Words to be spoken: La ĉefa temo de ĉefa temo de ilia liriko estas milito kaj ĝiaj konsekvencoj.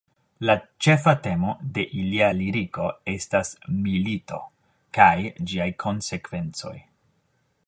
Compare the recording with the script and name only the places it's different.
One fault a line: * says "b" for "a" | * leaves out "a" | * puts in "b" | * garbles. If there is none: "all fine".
* leaves out "ĉefa temo de"